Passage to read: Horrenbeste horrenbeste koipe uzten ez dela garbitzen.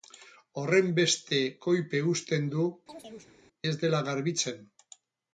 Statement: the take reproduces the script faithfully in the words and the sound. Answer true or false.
false